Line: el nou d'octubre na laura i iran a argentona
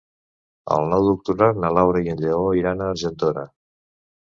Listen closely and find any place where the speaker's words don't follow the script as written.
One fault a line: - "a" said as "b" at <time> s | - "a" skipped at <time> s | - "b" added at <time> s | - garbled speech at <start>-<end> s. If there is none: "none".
- "en lleó" added at 2.1 s